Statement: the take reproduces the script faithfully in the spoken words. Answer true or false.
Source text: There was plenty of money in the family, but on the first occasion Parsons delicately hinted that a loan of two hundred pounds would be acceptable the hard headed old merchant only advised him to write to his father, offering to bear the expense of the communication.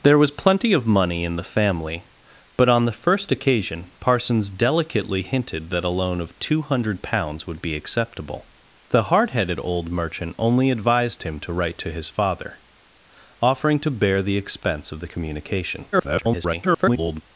false